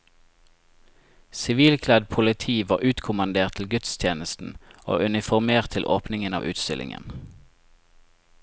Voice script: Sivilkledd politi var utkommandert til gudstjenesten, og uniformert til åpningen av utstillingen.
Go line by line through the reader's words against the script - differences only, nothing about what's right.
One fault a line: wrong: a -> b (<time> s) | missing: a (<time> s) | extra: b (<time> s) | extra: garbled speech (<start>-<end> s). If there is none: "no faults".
no faults